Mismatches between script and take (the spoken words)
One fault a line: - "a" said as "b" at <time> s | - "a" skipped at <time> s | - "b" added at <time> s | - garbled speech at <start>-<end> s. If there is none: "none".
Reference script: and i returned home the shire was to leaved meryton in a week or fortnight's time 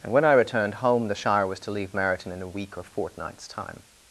- "when" added at 0.1 s
- "leaved" said as "leave" at 1.7 s